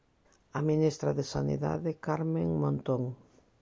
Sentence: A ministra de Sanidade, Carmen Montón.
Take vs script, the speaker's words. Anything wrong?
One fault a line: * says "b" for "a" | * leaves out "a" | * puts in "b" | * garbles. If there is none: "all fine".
all fine